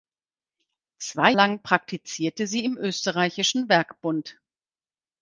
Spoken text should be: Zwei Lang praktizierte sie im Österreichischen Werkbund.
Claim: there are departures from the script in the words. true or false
false